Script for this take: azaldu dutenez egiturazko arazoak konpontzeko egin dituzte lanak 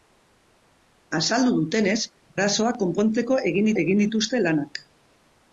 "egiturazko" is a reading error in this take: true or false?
true